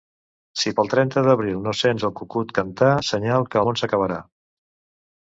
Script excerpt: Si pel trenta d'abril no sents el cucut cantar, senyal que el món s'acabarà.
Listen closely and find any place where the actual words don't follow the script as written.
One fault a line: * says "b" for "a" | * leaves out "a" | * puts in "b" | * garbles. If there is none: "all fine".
* leaves out "el"